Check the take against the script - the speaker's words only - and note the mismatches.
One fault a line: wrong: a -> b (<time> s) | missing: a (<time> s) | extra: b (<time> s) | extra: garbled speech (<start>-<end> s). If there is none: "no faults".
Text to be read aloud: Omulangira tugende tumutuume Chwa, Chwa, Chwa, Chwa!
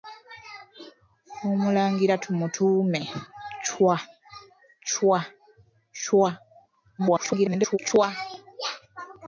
missing: tugende (2.1 s)
extra: garbled speech (7.0-7.8 s)